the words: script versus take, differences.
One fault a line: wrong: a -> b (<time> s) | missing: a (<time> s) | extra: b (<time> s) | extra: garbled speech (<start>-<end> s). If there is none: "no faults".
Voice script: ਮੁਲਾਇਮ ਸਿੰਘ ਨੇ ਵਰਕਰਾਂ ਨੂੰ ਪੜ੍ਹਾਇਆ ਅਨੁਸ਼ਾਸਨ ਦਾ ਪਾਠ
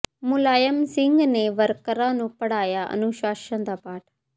no faults